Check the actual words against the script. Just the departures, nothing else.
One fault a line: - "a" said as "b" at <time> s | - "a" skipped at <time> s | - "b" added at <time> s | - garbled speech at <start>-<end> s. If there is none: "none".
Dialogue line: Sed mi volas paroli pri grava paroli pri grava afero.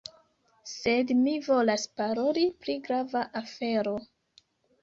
- "paroli pri grava" skipped at 3.3 s